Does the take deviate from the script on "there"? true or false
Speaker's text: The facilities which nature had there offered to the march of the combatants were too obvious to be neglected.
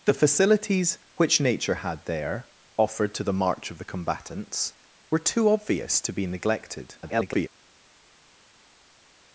false